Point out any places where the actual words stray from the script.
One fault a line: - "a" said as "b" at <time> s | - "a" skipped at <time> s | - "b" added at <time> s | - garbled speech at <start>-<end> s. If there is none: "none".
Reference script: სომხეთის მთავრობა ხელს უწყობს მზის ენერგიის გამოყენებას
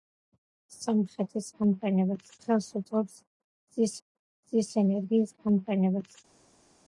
- "მთავრობა" said as "გამოყენებას" at 1.6 s
- "მზის" added at 4.0 s